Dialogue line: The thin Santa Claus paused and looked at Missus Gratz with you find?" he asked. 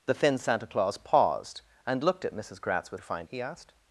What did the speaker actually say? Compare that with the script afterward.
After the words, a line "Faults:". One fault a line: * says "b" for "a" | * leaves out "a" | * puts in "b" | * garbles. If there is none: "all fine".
The thin Santa Claus paused and looked at Missus Gratz with you find?" he asked.
Faults:
all fine